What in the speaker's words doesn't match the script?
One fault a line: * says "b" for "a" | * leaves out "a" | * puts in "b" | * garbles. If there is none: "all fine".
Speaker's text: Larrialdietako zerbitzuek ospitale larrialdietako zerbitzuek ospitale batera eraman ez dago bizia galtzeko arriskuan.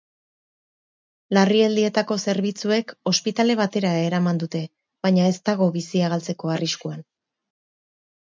* says "batera eraman dute baina" for "larrialdietako zerbitzuek ospitale batera eraman"